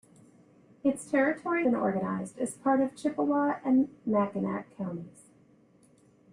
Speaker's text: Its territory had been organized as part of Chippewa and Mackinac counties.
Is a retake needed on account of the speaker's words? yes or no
yes